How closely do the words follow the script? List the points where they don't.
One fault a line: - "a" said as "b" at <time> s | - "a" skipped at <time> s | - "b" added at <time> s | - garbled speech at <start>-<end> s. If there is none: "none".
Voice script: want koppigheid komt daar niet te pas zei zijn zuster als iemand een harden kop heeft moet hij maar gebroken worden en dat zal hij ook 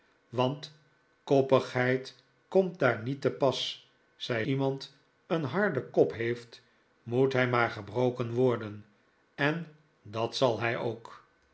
- "zijn zuster als" skipped at 4.5 s